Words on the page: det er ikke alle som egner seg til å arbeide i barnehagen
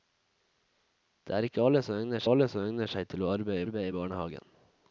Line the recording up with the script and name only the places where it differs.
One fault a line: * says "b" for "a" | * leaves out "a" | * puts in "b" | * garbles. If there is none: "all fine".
* puts in "alle som egner"
* puts in "arbeide"